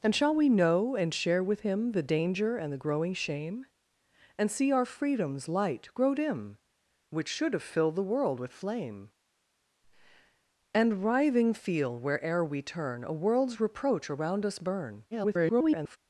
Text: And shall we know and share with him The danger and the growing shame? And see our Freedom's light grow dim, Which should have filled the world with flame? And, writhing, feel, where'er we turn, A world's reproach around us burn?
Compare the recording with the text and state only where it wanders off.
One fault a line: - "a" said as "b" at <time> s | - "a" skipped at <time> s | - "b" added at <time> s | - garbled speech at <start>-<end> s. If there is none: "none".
- garbled speech at 15.1-16.0 s